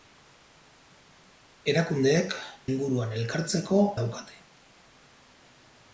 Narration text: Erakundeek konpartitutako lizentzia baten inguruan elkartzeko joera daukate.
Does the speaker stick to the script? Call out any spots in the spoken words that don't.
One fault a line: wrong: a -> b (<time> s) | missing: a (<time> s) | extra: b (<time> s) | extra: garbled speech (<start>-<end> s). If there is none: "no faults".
missing: konpartitutako lizentzia baten (2.3 s)
missing: joera (3.8 s)